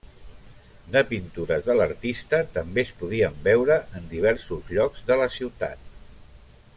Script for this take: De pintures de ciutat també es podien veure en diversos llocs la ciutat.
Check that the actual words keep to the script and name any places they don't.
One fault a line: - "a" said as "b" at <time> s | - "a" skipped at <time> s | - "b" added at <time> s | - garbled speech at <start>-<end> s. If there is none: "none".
- "ciutat" said as "l'artista" at 1.8 s
- "de" added at 5.1 s